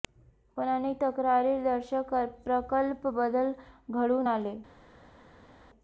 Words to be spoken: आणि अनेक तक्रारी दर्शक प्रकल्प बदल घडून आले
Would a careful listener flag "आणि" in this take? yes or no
yes